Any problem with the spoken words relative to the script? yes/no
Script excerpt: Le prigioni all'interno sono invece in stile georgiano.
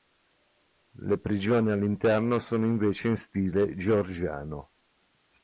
no